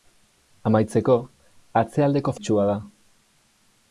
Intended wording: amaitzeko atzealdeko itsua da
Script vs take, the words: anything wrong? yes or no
no